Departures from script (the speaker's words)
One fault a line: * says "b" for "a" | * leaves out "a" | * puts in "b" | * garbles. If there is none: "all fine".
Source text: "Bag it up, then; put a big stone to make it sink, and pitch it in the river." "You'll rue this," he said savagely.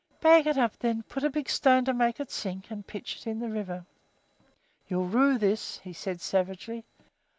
all fine